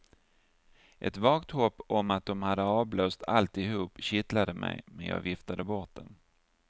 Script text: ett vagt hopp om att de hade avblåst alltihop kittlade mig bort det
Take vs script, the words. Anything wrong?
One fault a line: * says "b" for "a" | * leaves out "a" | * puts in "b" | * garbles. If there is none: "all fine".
* puts in "men jag viftade"